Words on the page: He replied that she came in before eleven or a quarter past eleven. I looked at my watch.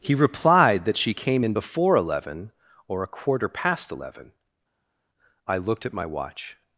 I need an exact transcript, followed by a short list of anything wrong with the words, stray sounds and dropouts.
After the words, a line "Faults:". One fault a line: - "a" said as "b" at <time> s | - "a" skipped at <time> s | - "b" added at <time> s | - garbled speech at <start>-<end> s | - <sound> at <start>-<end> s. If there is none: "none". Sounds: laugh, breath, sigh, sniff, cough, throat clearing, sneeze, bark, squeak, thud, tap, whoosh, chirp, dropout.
He replied that she came in before eleven or a quarter past eleven. I looked at my watch.
Faults:
none